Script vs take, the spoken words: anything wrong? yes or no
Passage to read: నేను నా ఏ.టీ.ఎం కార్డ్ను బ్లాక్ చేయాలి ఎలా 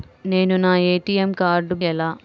yes